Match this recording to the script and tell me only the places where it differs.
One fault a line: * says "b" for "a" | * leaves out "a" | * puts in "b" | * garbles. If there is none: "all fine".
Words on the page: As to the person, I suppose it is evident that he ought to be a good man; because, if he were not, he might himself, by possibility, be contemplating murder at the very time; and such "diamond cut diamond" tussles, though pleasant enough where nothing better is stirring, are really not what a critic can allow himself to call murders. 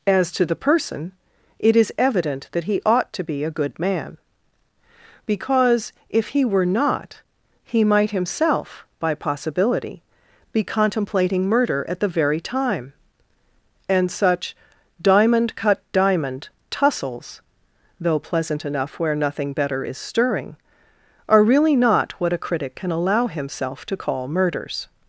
* leaves out "I suppose"